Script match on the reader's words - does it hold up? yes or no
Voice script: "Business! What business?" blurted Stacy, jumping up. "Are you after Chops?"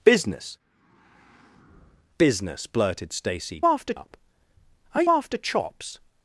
no